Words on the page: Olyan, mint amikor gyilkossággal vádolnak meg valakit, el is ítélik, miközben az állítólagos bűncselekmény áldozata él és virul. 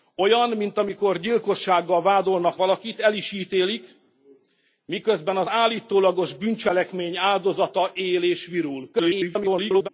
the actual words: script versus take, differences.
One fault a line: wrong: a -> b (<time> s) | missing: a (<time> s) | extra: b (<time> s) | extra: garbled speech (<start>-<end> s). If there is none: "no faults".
missing: meg (2.6 s)
extra: garbled speech (8.9-9.9 s)